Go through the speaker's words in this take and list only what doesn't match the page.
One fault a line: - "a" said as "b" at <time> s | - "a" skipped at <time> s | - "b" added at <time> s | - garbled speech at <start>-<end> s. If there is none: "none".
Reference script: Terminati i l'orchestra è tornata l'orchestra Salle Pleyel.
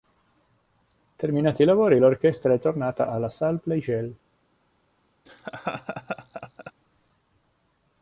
- "lavori" added at 1.6 s
- "l'orchestra" said as "alla" at 3.1 s